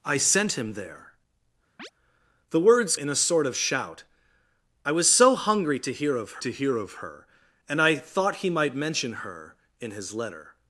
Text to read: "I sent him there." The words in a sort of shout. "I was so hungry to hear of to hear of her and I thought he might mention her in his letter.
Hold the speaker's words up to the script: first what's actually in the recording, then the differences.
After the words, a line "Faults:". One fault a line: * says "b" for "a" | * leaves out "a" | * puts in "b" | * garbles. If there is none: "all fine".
"I sent him there." The words in a sort of shout. "I was so hungry to hear of to hear of her and I thought he might mention her in his letter.
Faults:
all fine